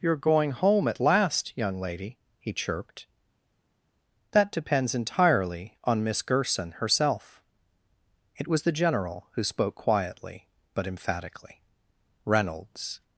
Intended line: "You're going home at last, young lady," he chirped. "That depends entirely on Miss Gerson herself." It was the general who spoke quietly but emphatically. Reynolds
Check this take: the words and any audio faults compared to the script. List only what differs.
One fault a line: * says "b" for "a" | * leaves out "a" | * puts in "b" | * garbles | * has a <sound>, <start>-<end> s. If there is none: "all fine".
all fine